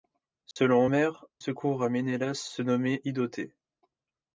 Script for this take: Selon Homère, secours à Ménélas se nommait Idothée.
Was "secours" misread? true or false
false